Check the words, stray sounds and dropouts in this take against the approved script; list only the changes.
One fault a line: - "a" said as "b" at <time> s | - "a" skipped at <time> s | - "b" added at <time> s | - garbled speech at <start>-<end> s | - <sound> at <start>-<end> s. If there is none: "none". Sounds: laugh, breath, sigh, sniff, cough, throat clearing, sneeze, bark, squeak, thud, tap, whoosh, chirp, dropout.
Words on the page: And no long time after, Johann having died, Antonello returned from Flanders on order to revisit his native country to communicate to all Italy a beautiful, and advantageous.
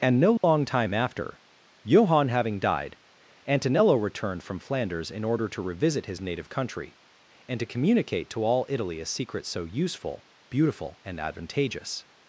- dropout at 0.4-0.4 s
- "on" said as "in" at 5.1 s
- "and" added at 7.5 s
- "secret so useful" added at 9.1 s